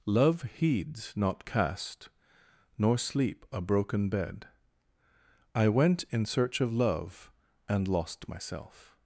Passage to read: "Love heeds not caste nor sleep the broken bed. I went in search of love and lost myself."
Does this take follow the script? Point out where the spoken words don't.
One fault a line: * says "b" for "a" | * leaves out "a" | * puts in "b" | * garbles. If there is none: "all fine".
* says "a" for "the"